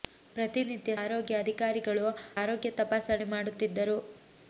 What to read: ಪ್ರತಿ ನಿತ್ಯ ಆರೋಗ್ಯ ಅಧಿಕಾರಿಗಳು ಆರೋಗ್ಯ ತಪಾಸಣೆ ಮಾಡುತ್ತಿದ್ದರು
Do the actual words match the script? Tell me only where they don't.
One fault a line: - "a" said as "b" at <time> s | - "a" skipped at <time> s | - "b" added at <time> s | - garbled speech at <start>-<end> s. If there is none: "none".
none